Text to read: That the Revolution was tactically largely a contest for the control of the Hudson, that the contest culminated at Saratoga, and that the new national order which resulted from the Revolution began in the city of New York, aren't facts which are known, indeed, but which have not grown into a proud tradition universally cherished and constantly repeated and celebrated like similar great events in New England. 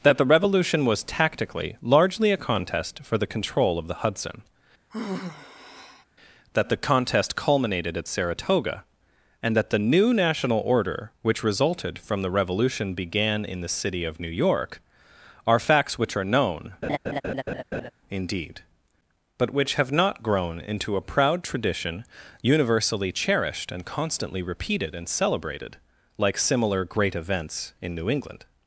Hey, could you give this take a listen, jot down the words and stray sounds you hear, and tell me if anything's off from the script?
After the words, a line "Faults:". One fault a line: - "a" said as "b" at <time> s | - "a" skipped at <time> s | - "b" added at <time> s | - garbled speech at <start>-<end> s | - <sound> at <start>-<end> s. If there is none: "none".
That the Revolution was tactically largely a contest for the control of the Hudson, that the contest culminated at Saratoga, and that the new national order which resulted from the Revolution began in the city of New York, are facts which are known, indeed, but which have not grown into a proud tradition universally cherished and constantly repeated and celebrated like similar great events in New England.
Faults:
- sigh at 4.9-6.0 s
- "aren't" said as "are" at 15.4 s
- laugh at 16.8-17.9 s